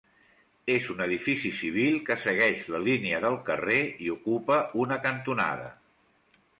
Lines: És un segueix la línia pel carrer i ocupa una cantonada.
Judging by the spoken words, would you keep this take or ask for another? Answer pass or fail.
fail